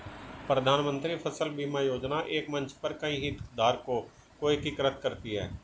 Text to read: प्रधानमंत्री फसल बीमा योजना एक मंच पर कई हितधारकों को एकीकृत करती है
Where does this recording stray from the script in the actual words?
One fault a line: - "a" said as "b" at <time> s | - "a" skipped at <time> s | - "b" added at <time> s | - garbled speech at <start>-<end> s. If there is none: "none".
none